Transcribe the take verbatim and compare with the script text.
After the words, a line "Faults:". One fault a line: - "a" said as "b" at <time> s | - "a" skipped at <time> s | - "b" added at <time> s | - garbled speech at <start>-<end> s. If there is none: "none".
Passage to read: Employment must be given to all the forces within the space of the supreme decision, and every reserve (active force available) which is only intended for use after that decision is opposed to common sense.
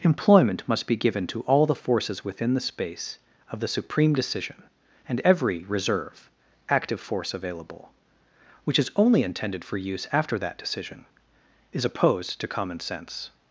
Employment must be given to all the forces within the space of the supreme decision, and every reserve (active force available) which is only intended for use after that decision is opposed to common sense.
Faults:
none